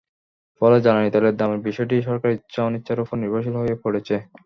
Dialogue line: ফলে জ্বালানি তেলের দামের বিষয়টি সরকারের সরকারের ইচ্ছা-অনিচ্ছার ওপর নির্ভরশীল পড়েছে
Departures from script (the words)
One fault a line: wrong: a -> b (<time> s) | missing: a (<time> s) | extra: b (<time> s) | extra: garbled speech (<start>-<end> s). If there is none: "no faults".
missing: সরকারের (2.4 s)
extra: হয়ে (3.6 s)